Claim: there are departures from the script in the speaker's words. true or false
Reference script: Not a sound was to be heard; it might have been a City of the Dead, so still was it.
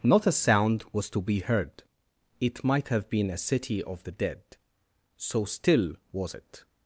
false